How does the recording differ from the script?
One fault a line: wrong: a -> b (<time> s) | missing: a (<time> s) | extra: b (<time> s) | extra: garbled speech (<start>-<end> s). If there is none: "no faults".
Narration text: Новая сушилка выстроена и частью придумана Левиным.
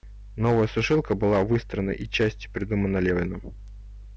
extra: была (1.1 s)